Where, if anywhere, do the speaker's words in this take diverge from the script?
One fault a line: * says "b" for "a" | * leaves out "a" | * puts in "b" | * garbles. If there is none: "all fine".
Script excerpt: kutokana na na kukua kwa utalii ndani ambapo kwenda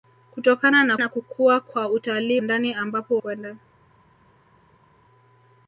all fine